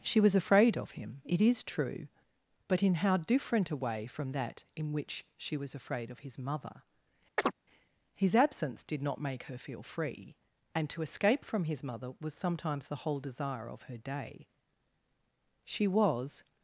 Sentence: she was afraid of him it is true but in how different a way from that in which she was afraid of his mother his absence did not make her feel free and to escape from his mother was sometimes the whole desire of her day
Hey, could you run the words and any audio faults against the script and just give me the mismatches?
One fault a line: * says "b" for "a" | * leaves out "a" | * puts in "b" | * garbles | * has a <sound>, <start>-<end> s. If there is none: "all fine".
* has a chirp, 7.4-7.5 s
* puts in "she was"